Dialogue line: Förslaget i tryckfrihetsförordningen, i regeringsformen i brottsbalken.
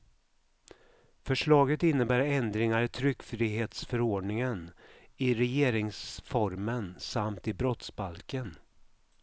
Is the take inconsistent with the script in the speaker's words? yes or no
yes